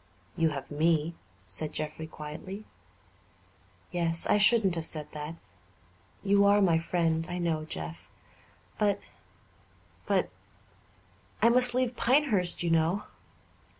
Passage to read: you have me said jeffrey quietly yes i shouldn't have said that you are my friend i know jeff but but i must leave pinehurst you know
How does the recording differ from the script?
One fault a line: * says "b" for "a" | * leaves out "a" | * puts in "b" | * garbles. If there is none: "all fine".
all fine